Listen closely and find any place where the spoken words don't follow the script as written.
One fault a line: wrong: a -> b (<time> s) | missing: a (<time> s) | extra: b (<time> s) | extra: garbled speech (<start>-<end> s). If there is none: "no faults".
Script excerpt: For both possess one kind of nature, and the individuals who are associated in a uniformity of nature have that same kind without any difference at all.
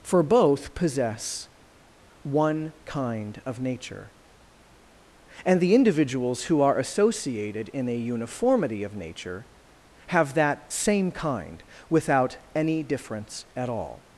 no faults